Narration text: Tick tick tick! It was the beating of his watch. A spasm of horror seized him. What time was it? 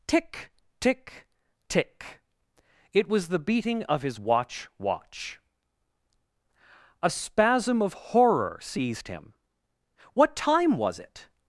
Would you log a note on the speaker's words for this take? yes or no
yes